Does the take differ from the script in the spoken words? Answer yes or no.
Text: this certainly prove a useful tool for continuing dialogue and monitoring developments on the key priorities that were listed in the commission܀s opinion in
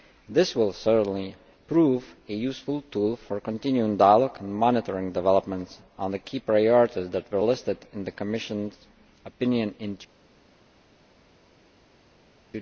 yes